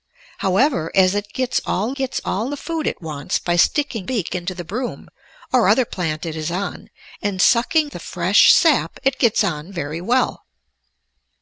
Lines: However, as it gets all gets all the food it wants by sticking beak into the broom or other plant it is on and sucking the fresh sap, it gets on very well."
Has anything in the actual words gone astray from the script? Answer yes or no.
no